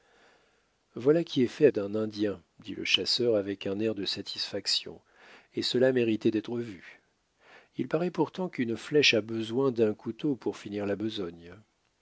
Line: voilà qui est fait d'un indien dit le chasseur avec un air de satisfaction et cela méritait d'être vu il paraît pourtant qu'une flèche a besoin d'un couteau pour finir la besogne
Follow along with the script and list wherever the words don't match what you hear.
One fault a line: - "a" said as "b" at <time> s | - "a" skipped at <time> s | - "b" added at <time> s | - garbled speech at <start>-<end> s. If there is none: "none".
none